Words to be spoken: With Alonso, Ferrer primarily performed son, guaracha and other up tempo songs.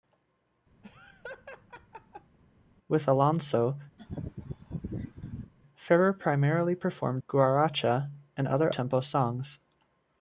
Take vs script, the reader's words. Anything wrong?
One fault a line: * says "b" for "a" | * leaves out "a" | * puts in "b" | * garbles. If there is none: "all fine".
* leaves out "son"
* leaves out "up"